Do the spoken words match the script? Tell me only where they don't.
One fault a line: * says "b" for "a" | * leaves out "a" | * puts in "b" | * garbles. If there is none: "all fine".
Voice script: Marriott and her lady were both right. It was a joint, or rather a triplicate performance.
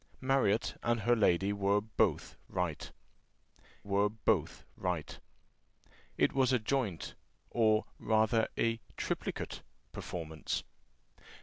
* puts in "were both right"